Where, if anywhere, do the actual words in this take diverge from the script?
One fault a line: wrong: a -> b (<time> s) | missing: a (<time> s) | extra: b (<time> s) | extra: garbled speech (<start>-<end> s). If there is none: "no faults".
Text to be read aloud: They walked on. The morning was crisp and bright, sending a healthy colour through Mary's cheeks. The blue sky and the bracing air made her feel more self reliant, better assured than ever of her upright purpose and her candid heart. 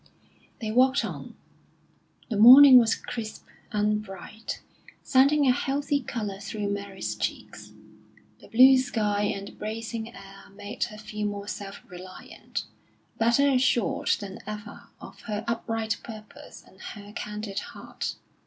no faults